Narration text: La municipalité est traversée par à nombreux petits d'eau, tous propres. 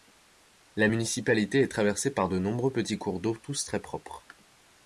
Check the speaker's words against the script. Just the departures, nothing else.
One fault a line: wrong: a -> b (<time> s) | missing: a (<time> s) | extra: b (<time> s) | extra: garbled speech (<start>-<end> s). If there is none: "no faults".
wrong: à -> de (2.3 s)
extra: cours (3.0 s)
extra: très (3.6 s)